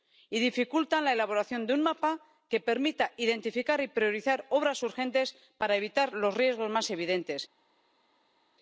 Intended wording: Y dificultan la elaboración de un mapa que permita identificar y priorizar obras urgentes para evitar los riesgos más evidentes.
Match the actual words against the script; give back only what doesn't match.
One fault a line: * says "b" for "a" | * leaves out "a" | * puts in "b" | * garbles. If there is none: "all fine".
all fine